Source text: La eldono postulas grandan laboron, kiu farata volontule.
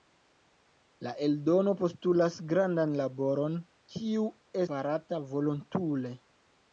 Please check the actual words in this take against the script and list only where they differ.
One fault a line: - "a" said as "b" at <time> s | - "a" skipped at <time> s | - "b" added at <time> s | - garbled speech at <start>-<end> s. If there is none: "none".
none